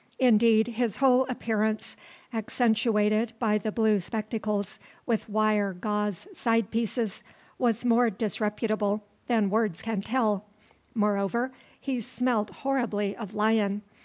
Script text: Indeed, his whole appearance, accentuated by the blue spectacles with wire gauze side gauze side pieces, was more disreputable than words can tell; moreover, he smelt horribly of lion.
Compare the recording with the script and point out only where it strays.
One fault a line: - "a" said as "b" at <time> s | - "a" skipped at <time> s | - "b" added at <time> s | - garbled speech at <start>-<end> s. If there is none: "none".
- "gauze side" skipped at 6.7 s